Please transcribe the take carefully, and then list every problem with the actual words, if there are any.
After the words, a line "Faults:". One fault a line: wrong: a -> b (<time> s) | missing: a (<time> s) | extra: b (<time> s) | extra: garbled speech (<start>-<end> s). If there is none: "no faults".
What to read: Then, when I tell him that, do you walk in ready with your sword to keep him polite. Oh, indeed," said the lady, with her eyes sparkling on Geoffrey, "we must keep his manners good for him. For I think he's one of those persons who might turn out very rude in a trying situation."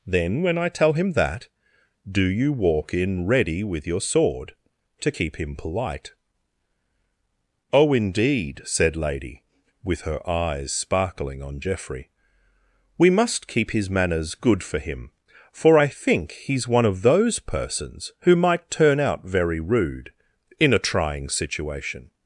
Then, when I tell him that, do you walk in ready with your sword to keep him polite. Oh, indeed," said lady, with her eyes sparkling on Geoffrey, "we must keep his manners good for him. For I think he's one of those persons who might turn out very rude in a trying situation."
Faults:
missing: the (9.0 s)